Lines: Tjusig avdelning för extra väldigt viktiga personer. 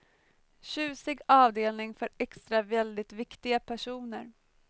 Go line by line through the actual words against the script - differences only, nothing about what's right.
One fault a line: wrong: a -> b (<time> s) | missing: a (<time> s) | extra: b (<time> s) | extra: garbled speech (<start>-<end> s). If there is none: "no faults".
no faults